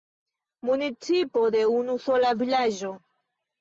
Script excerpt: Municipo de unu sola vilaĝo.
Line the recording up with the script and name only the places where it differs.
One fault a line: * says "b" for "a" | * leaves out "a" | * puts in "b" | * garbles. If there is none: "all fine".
all fine